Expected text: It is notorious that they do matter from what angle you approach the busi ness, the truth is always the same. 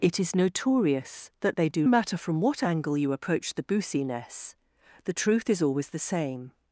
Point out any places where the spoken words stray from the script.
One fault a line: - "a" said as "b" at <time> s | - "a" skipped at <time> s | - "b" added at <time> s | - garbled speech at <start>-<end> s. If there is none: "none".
none